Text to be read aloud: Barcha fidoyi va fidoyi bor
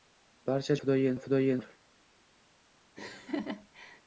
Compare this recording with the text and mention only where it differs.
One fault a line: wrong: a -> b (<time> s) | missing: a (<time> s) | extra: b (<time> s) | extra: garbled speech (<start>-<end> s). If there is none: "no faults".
no faults